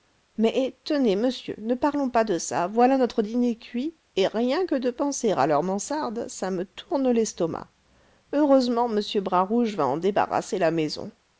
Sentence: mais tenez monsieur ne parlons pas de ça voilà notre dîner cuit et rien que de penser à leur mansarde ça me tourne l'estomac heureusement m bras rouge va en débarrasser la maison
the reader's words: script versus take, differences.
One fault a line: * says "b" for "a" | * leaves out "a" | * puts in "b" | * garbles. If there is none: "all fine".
all fine